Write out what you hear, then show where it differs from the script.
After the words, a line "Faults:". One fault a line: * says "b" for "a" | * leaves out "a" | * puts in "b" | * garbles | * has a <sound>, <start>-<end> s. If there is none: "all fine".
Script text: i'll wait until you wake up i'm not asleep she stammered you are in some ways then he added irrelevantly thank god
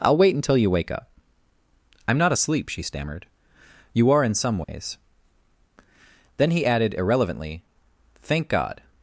i'll wait until you wake up i'm not asleep she stammered you are in some ways then he added irrelevantly thank god
Faults:
* has a dropout, 4.6-4.7 s